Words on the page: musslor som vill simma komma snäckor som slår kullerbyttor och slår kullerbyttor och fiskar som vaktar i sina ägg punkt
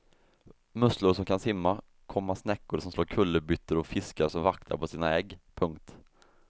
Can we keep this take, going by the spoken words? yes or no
no